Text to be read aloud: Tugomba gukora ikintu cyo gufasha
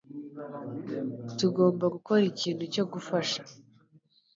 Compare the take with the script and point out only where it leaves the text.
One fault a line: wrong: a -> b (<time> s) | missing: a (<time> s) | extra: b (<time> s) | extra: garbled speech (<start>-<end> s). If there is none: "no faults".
no faults